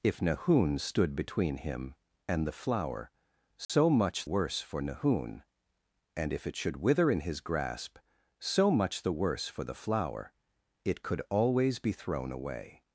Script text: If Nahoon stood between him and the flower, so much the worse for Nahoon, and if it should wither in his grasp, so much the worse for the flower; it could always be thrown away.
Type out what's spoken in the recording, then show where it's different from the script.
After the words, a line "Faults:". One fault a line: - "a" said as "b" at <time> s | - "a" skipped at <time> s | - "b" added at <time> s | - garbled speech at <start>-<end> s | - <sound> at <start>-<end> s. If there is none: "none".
If Nahoon stood between him and the flower, so much worse for Nahoon, and if it should wither in his grasp, so much the worse for the flower; it could always be thrown away.
Faults:
- dropout at 3.6-3.7 s
- "the" skipped at 4.2 s